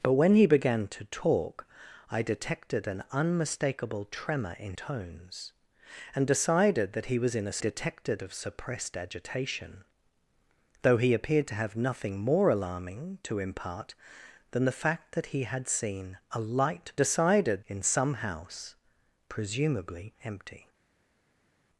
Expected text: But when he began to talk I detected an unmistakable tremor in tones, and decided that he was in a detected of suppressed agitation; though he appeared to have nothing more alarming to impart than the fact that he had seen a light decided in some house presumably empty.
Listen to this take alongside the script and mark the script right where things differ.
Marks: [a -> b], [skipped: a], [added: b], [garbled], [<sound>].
But when he began to talk I detected an unmistakable tremor in tones, and decided that he was in a detected of suppressed agitation; though he appeared to have nothing more alarming to impart than the fact that he had seen a light decided in some house presumably empty.